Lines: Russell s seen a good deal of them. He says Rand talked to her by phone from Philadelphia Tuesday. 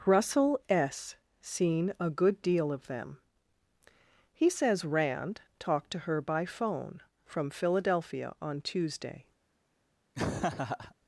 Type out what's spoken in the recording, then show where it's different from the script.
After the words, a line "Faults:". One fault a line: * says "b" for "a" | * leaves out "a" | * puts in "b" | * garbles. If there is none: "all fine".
Russell s seen a good deal of them. He says Rand talked to her by phone from Philadelphia on Tuesday.
Faults:
* puts in "on"